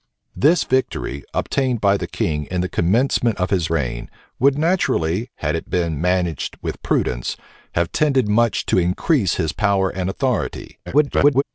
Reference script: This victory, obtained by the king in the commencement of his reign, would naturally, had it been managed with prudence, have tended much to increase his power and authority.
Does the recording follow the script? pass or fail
fail